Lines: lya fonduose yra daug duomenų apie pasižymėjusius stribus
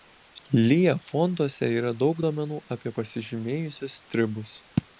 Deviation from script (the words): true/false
false